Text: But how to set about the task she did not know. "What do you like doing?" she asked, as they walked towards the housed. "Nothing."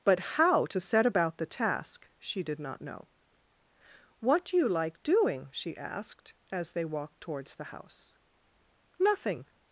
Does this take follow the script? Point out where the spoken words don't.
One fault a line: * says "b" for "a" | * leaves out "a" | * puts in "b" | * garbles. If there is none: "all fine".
* says "house" for "housed"